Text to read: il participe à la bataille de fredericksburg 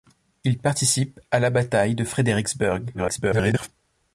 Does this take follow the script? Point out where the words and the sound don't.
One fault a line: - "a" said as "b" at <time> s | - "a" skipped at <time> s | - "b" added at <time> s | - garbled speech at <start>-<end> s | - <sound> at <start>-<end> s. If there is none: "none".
- garbled speech at 2.9-3.7 s